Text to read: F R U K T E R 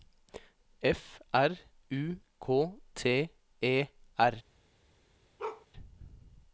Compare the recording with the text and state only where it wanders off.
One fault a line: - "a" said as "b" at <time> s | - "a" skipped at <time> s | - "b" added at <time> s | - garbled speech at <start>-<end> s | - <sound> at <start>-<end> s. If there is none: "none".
- bark at 5.4-5.7 s